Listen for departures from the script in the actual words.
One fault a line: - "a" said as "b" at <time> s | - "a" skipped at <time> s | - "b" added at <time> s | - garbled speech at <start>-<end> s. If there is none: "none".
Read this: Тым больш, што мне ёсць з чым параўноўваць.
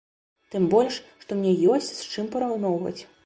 none